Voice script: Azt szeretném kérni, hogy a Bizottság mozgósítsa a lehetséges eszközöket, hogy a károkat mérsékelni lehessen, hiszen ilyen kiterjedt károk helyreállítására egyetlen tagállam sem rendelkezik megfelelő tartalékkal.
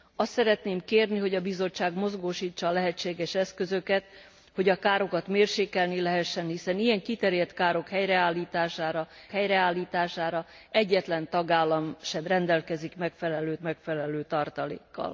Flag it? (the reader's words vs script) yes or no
yes